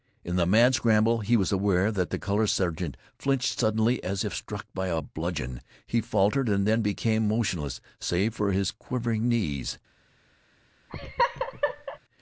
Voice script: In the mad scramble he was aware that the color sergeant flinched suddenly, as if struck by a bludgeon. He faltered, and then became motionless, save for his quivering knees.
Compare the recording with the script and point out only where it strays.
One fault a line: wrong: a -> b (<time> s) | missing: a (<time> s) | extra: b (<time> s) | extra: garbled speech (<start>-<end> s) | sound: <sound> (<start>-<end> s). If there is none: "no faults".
sound: laugh (10.9-12.0 s)